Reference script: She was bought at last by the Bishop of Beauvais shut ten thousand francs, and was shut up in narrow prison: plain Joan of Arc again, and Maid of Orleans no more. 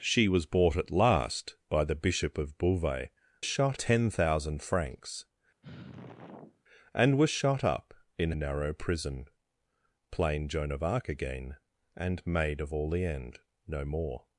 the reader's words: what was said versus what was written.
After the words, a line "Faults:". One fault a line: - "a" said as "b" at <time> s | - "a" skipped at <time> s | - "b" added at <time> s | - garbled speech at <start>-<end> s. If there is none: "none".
She was bought at last by the Bishop of Beauvais shut ten thousand francs, and was shut up in narrow prison: plain Joan of Arc again, and Maid of Orleans no more.
Faults:
none